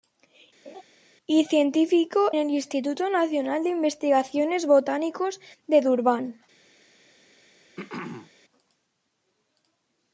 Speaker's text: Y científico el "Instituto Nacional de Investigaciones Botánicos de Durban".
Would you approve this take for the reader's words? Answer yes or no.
yes